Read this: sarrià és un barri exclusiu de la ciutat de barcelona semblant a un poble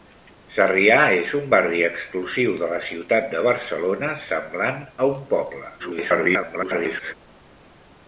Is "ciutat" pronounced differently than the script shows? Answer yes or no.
no